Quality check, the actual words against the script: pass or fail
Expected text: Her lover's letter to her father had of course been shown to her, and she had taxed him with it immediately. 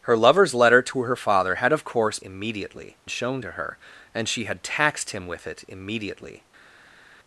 fail